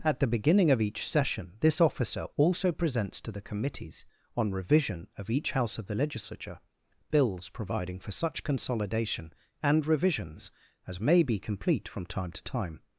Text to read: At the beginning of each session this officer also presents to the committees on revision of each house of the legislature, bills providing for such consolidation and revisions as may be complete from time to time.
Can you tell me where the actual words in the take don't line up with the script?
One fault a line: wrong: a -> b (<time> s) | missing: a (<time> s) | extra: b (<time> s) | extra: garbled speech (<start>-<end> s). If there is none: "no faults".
no faults